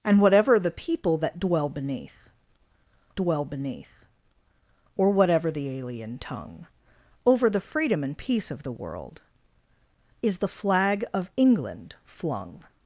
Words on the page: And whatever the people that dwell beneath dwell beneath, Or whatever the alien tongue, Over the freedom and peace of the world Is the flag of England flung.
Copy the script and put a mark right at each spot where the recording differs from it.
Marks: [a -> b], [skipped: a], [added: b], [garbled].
And whatever the people that dwell beneath dwell beneath, Or whatever the alien tongue, Over the freedom and peace of the world Is the flag of England flung.